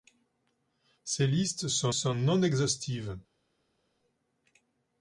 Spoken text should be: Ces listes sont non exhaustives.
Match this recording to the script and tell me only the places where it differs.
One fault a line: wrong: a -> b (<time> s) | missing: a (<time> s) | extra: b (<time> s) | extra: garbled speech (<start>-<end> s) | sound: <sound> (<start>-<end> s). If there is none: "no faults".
extra: sont (1.9 s)